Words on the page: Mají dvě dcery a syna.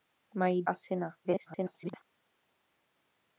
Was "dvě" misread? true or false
true